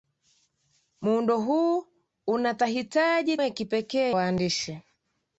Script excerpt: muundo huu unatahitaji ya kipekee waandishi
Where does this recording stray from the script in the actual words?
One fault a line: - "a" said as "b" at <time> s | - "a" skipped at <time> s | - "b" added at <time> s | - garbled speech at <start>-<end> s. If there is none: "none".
none